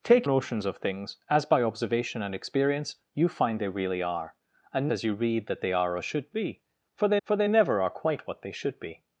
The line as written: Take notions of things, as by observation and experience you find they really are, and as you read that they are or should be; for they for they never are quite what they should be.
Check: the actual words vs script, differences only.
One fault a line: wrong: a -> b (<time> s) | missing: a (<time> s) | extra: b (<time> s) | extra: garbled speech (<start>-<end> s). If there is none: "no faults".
no faults